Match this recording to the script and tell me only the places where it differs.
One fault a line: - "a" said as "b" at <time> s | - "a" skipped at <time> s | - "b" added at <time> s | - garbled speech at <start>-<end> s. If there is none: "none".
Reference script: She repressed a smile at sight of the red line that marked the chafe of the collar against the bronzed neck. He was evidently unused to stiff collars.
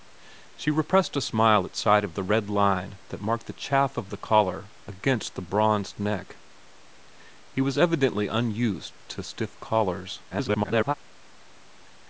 - garbled speech at 10.3-10.9 s